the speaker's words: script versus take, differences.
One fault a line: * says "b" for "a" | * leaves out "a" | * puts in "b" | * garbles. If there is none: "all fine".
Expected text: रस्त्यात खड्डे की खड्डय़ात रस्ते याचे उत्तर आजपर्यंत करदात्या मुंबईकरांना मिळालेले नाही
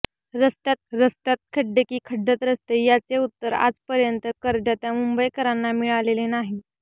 * puts in "रस्त्यात"